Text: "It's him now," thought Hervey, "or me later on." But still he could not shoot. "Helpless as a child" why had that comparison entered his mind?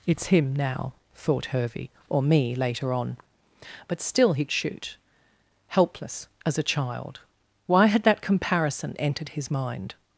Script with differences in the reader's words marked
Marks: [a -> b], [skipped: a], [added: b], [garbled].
"It's him now," thought Hervey, "or me later on." But still he [skipped: could not] shoot. "Helpless as a child" why had that comparison entered his mind?